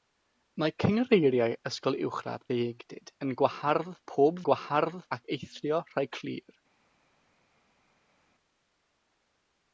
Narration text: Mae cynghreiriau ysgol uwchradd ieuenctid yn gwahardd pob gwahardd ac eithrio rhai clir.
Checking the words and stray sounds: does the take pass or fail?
pass